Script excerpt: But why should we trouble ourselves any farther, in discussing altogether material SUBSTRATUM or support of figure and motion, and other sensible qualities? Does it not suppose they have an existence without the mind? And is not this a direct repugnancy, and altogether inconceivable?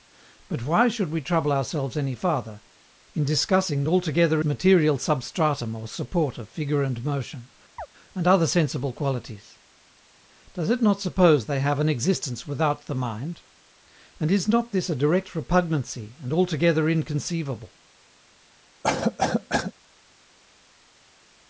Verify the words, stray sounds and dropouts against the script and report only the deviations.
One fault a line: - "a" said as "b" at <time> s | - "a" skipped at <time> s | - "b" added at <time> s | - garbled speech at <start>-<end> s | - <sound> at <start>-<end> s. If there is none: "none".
- chirp at 7.8-7.9 s
- cough at 18.8-19.7 s